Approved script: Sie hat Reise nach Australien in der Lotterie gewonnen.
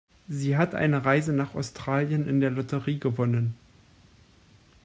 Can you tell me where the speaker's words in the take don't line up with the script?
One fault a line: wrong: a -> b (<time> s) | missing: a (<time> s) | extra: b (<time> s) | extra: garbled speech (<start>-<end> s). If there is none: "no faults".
extra: eine (0.7 s)